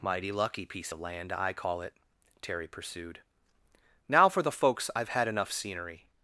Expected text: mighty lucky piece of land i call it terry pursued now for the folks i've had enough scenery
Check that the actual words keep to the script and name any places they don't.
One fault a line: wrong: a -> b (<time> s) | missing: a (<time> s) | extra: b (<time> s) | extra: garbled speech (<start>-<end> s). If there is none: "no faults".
no faults